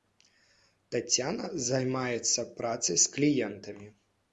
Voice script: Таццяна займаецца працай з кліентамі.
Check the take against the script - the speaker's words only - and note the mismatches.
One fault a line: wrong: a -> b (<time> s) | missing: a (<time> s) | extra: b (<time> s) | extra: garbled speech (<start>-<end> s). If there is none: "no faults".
no faults